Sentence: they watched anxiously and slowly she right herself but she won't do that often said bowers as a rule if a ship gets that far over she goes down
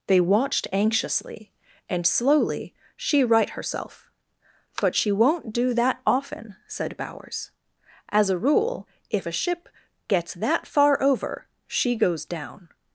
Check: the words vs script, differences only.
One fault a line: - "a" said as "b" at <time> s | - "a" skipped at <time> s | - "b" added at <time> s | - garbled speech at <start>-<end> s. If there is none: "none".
none